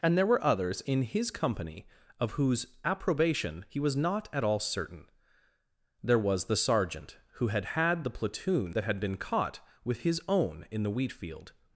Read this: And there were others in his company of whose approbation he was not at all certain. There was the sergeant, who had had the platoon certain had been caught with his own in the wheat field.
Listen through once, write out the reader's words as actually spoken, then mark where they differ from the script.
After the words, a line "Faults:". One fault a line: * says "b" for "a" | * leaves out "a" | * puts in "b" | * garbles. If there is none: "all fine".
And there were others in his company of whose approbation he was not at all certain. There was the sergeant, who had had the platoon that had been caught with his own in the wheat field.
Faults:
* says "that" for "certain"